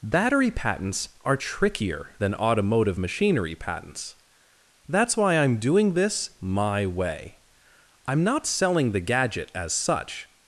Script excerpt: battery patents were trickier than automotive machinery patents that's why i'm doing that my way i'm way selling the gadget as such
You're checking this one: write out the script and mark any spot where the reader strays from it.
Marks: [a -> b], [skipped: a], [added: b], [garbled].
battery patents [were -> are] trickier than automotive machinery patents that's why i'm doing [that -> this] my way i'm [way -> not] selling the gadget as such